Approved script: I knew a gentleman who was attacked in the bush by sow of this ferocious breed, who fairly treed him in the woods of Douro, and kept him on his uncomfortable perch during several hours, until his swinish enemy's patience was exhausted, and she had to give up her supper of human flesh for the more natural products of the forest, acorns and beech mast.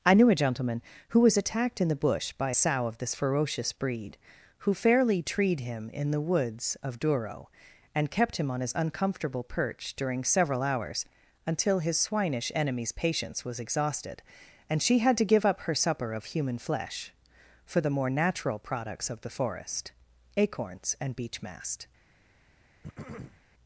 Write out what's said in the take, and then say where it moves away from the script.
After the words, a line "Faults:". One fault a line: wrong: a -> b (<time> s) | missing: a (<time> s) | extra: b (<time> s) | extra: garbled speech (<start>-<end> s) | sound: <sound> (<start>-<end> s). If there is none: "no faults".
I knew a gentleman who was attacked in the bush by sow of this ferocious breed, who fairly treed him in the woods of Douro, and kept him on his uncomfortable perch during several hours, until his swinish enemy's patience was exhausted, and she had to give up her supper of human flesh for the more natural products of the forest, acorns and beech mast.
Faults:
sound: throat clearing (22.8-23.4 s)